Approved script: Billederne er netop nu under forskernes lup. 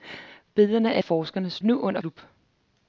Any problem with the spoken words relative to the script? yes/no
yes